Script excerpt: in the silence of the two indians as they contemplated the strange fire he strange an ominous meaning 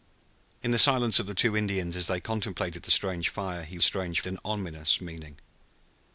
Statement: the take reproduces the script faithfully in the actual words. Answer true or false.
true